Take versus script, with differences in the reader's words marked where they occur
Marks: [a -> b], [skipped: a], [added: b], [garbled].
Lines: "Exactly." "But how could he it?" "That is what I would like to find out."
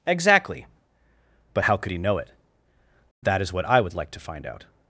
"Exactly." "But how could he [added: know] it?" "That is what I would like to find out."